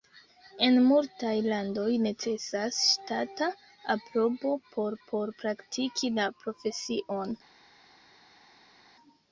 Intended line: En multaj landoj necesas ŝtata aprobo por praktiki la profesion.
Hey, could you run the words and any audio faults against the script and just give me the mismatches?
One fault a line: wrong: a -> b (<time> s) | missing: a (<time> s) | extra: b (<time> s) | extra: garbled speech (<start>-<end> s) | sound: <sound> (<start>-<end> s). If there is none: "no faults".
extra: por (5.1 s)